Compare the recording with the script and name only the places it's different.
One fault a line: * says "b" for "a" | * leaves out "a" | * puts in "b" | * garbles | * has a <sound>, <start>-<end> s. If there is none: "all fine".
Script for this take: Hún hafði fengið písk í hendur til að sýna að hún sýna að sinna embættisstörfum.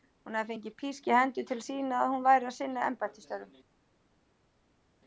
* says "væri" for "sýna"